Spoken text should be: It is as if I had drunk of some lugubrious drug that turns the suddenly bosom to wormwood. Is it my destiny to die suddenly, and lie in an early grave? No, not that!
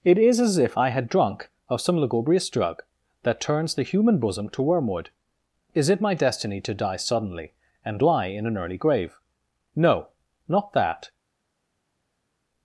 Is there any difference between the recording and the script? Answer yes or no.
yes